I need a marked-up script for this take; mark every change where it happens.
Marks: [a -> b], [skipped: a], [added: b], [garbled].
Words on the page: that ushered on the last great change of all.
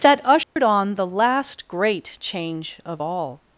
that ushered on the last great change of all.